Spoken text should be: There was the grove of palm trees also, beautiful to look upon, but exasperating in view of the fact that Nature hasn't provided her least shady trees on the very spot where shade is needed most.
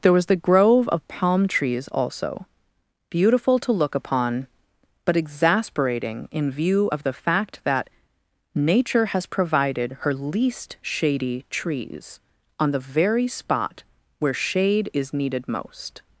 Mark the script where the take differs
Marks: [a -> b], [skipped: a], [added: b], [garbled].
There was the grove of palm trees also, beautiful to look upon, but exasperating in view of the fact that Nature [hasn't -> has] provided her least shady trees on the very spot where shade is needed most.